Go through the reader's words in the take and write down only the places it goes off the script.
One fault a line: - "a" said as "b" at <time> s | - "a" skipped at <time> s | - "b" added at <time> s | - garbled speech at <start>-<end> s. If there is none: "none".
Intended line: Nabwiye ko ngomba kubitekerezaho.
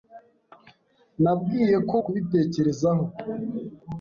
- "ngomba" skipped at 2.0 s